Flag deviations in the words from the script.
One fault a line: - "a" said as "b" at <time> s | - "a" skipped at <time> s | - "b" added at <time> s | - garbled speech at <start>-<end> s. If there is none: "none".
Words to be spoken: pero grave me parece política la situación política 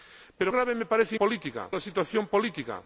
none